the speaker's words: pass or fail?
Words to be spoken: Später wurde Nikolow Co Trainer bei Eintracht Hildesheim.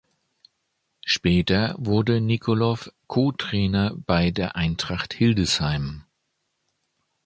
fail